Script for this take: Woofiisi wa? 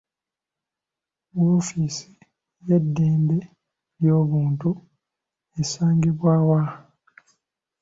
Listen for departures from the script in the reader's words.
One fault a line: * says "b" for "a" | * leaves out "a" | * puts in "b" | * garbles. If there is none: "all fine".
* puts in "y'eddembe ly'obuntu esangibwa"